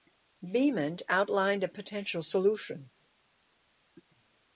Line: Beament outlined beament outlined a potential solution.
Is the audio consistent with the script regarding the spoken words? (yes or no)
no